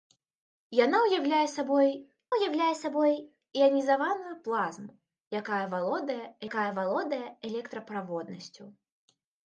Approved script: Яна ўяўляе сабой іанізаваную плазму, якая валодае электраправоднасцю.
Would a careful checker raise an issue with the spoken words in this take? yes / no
yes